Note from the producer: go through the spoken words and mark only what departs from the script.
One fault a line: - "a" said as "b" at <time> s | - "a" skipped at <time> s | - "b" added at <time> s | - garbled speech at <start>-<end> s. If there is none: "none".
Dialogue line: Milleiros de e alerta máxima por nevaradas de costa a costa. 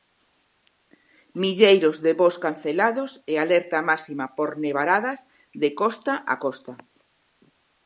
- "voos cancelados" added at 2.2 s